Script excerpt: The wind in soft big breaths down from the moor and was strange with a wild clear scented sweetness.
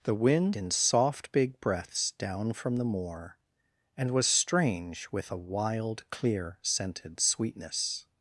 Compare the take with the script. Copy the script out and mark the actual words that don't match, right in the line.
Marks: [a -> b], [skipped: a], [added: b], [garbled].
The wind in soft big breaths down from the moor and was strange with a wild clear scented sweetness.